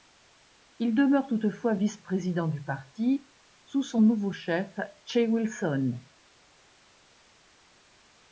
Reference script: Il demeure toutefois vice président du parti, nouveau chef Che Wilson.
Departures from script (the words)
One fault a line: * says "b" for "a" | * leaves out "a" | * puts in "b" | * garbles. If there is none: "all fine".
* puts in "sous son"